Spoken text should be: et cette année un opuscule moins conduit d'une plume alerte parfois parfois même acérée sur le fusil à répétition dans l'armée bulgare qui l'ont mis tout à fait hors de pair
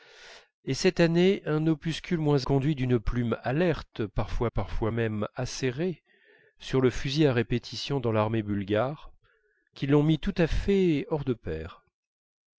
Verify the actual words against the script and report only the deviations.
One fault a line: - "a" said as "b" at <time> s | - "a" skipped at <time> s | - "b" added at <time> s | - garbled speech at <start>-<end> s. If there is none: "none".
none